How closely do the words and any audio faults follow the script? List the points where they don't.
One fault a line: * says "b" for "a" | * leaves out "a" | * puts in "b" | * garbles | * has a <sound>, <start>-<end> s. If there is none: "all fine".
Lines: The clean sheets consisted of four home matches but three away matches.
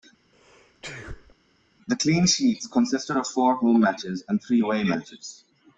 * has a sneeze, 0.3-1.3 s
* says "and" for "but"